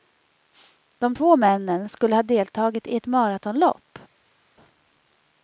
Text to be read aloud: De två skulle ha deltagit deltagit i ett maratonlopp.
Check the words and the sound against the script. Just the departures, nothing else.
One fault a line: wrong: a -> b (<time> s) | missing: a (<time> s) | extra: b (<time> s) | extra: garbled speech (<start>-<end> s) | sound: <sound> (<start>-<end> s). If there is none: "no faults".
extra: männen (1.4 s)
missing: deltagit (2.9 s)